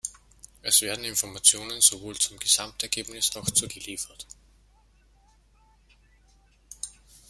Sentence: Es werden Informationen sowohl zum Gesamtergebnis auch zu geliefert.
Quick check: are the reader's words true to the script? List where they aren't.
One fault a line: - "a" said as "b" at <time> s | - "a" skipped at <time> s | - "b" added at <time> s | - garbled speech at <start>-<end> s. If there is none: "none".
none